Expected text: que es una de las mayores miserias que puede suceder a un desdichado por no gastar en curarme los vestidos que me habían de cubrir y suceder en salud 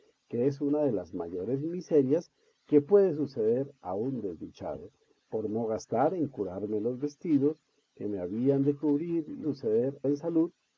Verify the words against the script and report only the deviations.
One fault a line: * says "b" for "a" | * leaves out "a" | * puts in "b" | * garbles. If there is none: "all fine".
all fine